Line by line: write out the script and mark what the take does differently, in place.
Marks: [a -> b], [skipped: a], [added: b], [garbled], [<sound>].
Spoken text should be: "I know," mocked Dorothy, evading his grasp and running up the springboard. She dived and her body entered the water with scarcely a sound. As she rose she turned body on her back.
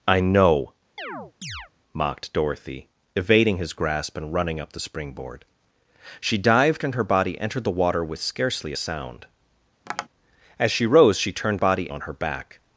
"I know," [chirp] mocked Dorothy, evading his grasp and running up the springboard. She dived and her body entered the water with scarcely a sound. [tap] As she rose she turned body on her back.